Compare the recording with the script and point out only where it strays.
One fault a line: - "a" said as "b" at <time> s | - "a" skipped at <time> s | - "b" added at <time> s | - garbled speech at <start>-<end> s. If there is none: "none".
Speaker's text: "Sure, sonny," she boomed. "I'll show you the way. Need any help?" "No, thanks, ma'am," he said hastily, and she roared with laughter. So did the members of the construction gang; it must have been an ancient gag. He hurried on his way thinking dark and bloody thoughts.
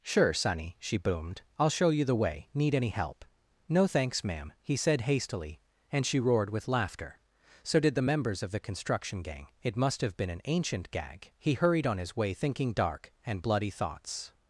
none